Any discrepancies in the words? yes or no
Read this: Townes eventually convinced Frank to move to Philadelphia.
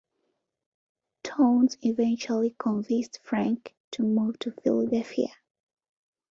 no